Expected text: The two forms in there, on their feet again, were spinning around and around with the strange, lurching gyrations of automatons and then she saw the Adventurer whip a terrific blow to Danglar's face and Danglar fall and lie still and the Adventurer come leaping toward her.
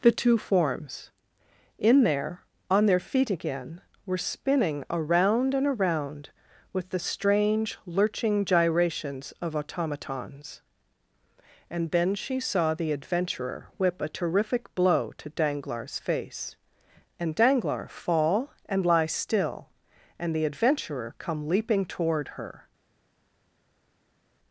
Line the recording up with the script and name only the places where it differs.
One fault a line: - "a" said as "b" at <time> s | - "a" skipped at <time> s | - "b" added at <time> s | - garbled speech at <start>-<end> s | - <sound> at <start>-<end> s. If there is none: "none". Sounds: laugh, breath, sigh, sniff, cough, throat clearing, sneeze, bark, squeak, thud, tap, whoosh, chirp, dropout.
none